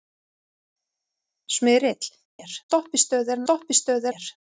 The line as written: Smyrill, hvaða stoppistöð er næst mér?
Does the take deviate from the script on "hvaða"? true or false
true